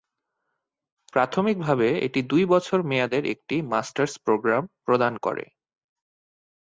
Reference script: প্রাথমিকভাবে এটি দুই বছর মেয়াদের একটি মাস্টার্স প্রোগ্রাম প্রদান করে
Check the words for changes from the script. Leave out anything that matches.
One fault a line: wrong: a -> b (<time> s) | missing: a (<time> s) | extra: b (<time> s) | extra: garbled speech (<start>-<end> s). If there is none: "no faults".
no faults